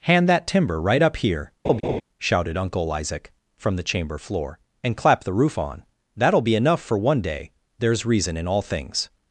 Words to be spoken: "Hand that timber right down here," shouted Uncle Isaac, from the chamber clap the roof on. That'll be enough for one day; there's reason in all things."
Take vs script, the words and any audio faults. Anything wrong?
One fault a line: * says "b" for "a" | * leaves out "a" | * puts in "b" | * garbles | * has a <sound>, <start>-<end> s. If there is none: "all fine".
* says "up" for "down"
* has a laugh, 1.6-2.0 s
* puts in "floor and"